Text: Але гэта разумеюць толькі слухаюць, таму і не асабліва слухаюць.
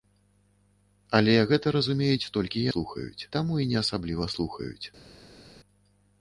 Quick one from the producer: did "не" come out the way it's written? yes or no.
yes